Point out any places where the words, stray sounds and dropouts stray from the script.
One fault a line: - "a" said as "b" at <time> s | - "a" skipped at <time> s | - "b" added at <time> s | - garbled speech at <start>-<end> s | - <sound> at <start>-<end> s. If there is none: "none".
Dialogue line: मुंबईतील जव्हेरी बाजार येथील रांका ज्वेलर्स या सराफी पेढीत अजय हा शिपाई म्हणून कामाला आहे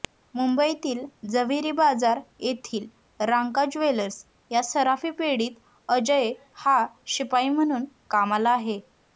none